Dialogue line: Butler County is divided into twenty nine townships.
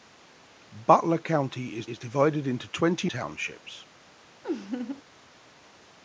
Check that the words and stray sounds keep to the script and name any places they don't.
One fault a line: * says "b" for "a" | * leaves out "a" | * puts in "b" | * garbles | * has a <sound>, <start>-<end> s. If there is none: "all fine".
* puts in "is"
* leaves out "nine"
* has a laugh, 4.4-5.0 s